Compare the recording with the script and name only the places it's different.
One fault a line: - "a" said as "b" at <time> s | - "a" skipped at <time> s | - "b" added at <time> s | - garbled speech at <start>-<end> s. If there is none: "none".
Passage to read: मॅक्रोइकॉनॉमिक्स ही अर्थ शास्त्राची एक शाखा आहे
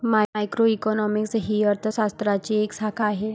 none